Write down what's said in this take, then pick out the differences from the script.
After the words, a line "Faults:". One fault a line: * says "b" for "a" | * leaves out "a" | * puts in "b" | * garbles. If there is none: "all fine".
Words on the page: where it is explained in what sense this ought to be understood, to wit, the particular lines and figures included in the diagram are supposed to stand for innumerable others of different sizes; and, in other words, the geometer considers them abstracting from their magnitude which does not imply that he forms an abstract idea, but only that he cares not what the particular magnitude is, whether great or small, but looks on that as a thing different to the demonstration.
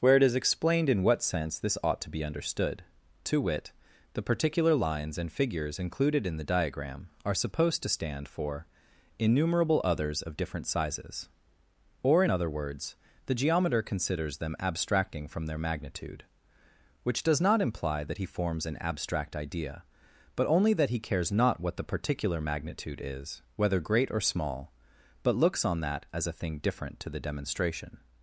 where it is explained in what sense this ought to be understood, to wit, the particular lines and figures included in the diagram are supposed to stand for innumerable others of different sizes; or, in other words, the geometer considers them abstracting from their magnitude which does not imply that he forms an abstract idea, but only that he cares not what the particular magnitude is, whether great or small, but looks on that as a thing different to the demonstration.
Faults:
* says "or" for "and"